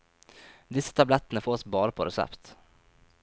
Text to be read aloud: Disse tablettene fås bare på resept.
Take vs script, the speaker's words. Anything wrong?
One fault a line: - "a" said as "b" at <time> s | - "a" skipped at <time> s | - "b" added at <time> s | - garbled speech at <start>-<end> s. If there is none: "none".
none